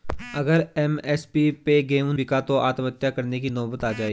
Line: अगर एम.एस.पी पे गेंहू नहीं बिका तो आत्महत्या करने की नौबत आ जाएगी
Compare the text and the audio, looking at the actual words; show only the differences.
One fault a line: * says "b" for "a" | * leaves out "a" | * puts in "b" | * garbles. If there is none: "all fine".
* leaves out "नहीं"